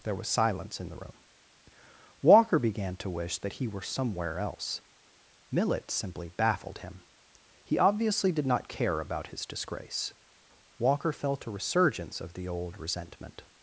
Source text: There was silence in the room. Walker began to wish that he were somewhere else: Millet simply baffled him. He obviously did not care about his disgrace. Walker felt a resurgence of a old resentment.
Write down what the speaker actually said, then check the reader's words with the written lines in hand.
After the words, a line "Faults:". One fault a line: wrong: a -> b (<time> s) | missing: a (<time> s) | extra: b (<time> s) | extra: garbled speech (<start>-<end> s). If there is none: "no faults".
There was silence in the room. Walker began to wish that he were somewhere else: Millet simply baffled him. He obviously did not care about his disgrace. Walker felt a resurgence of the old resentment.
Faults:
wrong: a -> the (12.3 s)